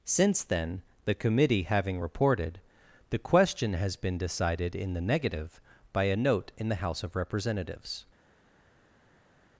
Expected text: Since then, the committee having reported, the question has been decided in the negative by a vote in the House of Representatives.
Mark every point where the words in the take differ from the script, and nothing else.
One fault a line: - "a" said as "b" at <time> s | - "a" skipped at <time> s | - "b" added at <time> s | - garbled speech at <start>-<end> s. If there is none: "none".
- "vote" said as "note" at 6.2 s